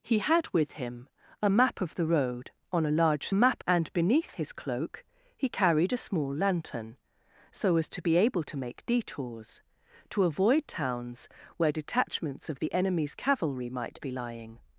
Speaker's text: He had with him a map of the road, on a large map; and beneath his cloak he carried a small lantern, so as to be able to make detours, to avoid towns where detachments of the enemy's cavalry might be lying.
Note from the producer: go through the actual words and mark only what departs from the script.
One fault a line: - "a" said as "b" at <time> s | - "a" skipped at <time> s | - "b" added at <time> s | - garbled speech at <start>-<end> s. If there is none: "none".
none